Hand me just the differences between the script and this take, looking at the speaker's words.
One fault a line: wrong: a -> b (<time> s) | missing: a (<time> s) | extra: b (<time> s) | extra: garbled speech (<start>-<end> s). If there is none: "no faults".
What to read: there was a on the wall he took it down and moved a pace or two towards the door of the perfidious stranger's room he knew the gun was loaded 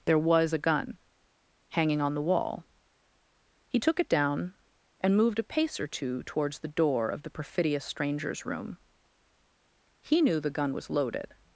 extra: gun hanging (0.6 s)